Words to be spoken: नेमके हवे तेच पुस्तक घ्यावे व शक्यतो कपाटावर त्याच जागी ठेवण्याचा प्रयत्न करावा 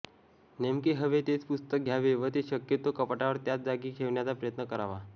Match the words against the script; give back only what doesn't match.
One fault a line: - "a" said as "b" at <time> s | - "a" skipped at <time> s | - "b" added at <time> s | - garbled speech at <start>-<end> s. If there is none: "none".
- "ते" added at 2.3 s